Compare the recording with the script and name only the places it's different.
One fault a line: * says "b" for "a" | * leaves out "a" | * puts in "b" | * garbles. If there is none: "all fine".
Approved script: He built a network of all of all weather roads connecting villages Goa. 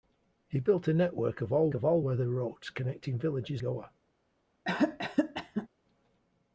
all fine